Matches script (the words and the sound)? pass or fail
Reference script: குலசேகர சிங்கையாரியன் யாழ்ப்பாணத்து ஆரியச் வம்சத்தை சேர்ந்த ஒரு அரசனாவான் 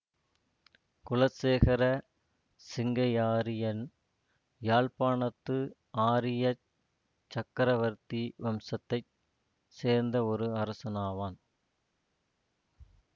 fail